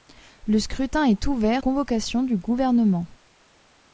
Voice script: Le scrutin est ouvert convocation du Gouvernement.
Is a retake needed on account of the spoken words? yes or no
no